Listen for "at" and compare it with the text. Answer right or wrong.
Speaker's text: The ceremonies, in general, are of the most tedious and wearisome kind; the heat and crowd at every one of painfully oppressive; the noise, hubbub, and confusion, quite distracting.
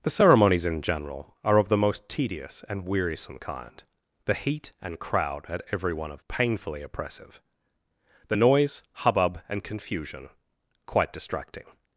right